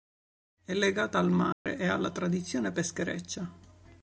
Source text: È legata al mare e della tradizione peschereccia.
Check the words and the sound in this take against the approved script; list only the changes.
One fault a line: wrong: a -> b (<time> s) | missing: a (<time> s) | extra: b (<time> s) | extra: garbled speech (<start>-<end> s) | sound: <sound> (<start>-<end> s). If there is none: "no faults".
sound: dropout (1.5-1.7 s)
wrong: della -> alla (1.9 s)